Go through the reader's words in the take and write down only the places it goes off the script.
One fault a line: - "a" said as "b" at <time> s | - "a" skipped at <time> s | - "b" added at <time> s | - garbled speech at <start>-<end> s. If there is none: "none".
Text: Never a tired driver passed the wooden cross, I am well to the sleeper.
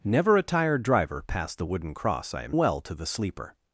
none